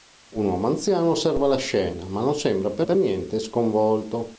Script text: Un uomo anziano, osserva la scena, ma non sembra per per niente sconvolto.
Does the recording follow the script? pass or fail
pass